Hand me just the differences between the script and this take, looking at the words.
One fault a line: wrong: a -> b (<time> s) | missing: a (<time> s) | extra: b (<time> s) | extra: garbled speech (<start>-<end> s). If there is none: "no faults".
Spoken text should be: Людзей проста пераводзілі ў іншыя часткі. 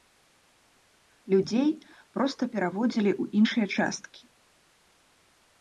no faults